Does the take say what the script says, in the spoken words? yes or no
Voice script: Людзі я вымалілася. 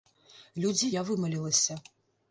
yes